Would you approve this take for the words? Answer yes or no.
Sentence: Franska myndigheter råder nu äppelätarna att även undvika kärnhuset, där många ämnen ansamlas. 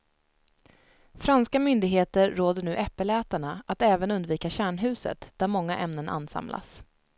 yes